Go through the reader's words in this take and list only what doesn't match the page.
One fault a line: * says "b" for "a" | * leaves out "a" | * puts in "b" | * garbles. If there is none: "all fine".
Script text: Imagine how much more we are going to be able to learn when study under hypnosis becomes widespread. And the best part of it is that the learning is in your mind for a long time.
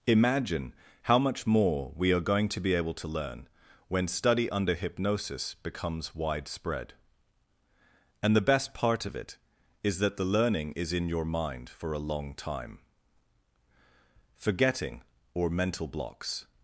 * puts in "Forgetting or mental blocks"